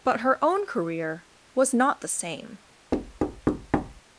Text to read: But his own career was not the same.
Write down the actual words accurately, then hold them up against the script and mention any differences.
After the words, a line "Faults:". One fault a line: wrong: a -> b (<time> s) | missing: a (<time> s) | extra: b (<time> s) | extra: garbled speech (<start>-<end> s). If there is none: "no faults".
But her own career was not the same.
Faults:
wrong: his -> her (0.2 s)